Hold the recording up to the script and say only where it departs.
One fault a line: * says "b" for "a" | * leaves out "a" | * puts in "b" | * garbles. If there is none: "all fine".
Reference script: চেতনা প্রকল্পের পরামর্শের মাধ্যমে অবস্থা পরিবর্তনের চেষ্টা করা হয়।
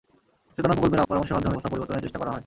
all fine